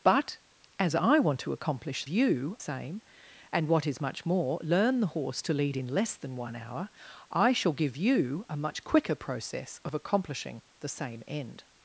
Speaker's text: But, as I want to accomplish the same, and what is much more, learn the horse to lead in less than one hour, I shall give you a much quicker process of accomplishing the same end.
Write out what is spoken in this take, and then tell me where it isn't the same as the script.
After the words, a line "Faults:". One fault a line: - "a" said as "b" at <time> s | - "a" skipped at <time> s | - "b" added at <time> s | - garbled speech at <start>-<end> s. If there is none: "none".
But, as I want to accomplish you same, and what is much more, learn the horse to lead in less than one hour, I shall give you a much quicker process of accomplishing the same end.
Faults:
- "the" said as "you" at 2.1 s